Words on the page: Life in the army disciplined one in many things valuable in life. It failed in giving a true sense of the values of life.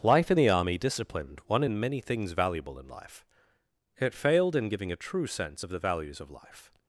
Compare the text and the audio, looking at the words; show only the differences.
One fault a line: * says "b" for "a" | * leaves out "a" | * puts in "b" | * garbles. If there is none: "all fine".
all fine